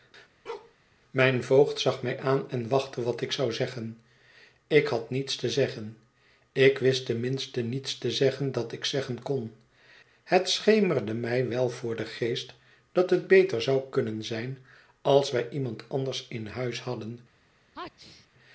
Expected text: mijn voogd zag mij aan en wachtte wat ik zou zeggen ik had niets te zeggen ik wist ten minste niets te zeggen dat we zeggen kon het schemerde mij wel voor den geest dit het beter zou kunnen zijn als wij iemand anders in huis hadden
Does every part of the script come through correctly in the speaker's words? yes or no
no